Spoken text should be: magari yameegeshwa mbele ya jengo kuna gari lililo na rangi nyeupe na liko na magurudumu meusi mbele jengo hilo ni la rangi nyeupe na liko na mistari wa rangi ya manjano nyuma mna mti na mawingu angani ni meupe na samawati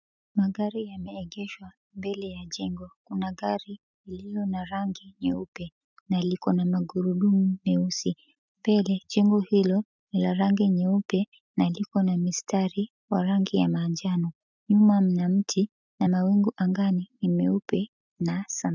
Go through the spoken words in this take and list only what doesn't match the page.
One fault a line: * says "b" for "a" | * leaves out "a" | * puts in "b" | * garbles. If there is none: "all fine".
all fine